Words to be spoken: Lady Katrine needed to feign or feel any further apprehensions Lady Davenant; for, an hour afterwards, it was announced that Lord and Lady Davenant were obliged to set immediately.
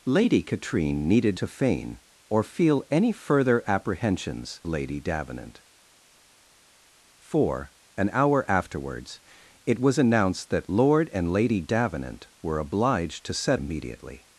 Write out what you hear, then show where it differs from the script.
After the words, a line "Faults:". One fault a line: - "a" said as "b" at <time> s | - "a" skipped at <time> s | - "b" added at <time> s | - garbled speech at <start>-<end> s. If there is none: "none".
Lady Katrine needed to feign or feel any further apprehensions Lady Davenant; for, an hour afterwards, it was announced that Lord and Lady Davenant were obliged to set immediately.
Faults:
none